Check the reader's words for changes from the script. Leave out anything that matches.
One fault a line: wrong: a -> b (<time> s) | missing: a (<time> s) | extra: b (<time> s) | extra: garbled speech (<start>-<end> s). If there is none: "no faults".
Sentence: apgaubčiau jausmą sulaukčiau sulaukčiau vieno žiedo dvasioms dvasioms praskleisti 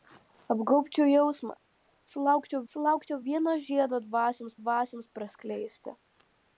no faults